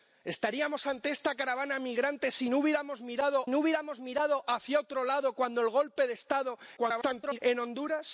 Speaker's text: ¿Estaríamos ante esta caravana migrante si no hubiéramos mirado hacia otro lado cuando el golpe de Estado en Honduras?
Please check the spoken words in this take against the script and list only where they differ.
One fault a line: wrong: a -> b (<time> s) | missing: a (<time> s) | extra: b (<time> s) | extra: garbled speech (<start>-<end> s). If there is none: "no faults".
extra: no hubiéramos mirado (3.5 s)
extra: garbled speech (6.8-7.4 s)